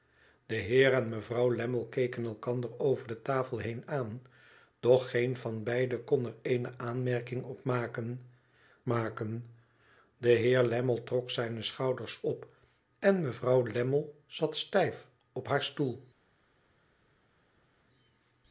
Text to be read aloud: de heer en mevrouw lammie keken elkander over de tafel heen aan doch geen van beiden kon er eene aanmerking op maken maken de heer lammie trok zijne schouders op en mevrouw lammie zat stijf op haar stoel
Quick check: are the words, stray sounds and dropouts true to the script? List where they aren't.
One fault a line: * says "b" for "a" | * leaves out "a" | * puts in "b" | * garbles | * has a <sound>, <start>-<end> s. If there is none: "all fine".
all fine